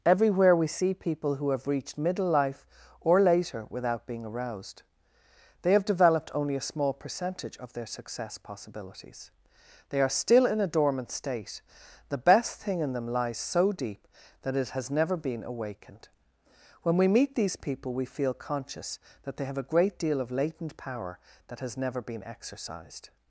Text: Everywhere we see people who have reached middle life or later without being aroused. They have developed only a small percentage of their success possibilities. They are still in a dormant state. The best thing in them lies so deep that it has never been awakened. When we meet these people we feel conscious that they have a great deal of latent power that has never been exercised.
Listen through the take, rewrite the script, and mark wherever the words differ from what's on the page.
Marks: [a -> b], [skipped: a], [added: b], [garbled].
Everywhere we see people who have reached middle life or later without being aroused. They have developed only a small percentage of their success possibilities. They are still in a dormant state. The best thing in them lies so deep that it has never been awakened. When we meet these people we feel conscious that they have a great deal of latent power that has never been exercised.